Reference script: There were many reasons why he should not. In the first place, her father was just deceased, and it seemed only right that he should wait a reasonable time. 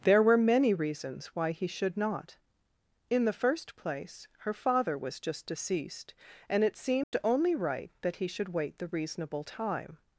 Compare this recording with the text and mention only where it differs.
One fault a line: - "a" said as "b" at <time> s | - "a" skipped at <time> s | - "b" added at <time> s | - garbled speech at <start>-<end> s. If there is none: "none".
- "a" said as "the" at 8.8 s